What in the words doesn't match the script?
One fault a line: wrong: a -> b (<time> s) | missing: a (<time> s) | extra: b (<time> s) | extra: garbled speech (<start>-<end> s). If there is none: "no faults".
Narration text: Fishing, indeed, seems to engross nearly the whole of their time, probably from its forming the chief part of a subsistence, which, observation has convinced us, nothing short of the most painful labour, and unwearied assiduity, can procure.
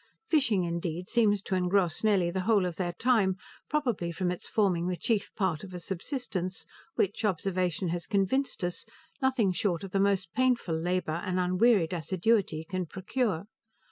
no faults